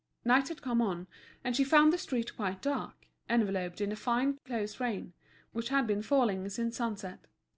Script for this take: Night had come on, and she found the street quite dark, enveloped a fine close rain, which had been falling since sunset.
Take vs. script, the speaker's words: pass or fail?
fail